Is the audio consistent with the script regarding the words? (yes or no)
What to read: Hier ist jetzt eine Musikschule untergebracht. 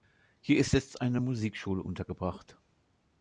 yes